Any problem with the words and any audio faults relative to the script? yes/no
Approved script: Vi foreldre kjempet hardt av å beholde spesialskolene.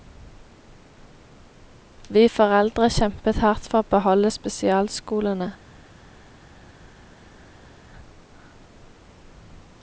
yes